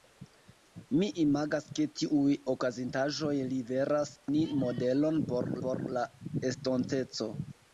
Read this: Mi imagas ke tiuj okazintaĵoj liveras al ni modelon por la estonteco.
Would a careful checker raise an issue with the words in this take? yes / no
yes